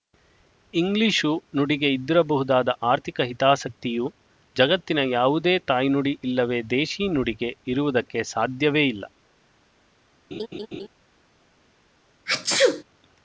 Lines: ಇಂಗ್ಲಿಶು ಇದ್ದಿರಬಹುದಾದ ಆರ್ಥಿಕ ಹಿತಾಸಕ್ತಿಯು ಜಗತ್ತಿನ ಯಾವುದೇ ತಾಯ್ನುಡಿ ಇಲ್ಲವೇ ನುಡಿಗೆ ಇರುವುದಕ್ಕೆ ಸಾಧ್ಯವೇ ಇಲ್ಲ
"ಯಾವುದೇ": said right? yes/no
yes